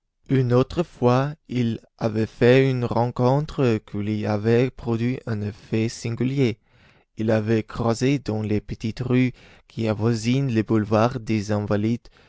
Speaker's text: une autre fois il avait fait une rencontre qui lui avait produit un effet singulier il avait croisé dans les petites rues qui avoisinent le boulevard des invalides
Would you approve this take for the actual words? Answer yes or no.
yes